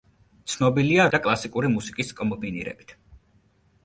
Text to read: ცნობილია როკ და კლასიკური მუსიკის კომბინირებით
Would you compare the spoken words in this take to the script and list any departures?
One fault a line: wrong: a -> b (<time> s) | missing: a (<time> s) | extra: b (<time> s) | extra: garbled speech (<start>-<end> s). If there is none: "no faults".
missing: როკ (1.1 s)